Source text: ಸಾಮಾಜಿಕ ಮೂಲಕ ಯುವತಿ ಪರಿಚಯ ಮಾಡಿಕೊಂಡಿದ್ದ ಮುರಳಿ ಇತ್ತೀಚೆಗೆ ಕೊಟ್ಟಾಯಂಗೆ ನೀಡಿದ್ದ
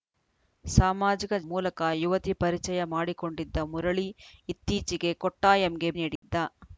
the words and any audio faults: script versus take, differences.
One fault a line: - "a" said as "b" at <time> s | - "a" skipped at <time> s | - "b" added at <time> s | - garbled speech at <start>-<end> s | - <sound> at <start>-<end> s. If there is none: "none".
- dropout at 6.2-6.2 s